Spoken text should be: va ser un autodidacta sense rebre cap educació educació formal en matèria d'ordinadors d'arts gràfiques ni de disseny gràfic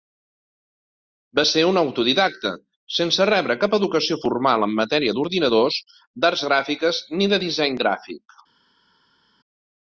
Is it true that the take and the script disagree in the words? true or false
true